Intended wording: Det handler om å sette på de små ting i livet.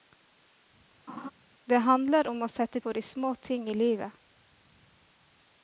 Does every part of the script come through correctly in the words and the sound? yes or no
no